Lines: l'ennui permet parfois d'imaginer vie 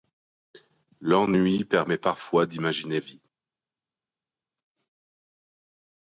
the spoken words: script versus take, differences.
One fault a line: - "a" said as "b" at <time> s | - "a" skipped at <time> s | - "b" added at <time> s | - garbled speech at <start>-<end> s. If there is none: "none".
none